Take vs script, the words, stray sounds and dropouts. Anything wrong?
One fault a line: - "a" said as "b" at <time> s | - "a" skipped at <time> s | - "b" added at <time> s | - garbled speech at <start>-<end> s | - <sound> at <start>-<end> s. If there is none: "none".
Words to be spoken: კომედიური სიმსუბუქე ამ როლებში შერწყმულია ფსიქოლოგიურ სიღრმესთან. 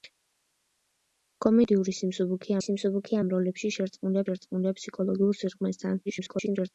- "სიმსუბუქე" added at 2.6 s
- "შერწყმულია" added at 4.3 s
- garbled speech at 6.1-6.7 s